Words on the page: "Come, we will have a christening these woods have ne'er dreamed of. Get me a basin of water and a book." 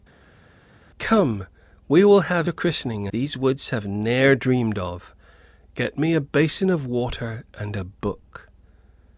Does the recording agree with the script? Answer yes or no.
yes